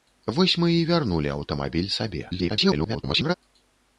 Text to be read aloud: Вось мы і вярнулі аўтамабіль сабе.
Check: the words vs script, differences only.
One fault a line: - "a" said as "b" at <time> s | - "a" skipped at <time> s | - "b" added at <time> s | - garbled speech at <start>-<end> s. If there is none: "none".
- garbled speech at 2.3-3.3 s